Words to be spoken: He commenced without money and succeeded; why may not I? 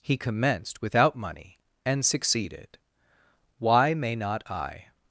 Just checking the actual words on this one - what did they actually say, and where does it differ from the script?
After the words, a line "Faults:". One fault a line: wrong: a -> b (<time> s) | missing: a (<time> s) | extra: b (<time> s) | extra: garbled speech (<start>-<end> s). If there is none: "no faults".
He commenced without money and succeeded; why may not I?
Faults:
no faults